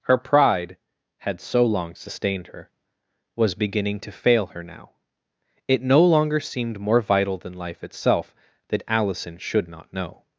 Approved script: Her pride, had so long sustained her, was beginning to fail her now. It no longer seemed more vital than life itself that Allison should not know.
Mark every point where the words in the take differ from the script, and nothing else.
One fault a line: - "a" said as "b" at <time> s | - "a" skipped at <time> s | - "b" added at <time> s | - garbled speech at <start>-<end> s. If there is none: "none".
none